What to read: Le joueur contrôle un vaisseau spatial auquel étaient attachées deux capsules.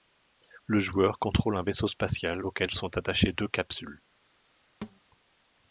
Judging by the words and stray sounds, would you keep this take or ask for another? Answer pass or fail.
fail